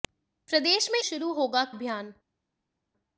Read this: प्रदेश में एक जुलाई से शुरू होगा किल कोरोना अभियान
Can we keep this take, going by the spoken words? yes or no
no